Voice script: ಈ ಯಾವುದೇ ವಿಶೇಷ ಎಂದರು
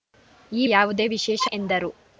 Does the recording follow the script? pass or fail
pass